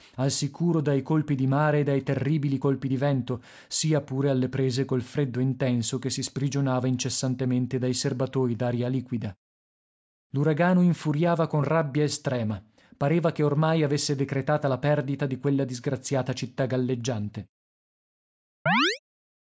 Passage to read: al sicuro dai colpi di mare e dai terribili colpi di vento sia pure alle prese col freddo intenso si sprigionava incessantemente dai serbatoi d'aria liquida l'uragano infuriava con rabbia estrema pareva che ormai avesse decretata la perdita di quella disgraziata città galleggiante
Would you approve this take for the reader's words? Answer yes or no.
no